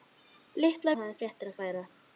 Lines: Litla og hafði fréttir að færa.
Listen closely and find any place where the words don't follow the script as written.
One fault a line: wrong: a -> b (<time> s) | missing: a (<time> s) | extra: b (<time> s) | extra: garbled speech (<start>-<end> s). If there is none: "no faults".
no faults